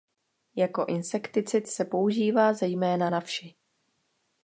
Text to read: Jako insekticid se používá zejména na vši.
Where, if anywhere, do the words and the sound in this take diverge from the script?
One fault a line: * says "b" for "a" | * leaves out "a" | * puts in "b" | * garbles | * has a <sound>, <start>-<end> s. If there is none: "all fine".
all fine